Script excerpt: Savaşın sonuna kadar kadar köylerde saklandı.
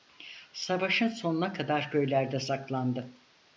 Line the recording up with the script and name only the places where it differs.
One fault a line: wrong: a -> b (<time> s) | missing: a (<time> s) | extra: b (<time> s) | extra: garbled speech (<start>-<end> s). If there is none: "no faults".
missing: kadar (1.9 s)